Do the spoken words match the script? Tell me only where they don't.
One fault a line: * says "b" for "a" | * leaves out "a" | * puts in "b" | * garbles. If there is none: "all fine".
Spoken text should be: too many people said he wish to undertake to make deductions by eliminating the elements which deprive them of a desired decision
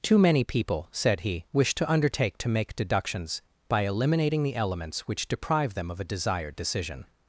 all fine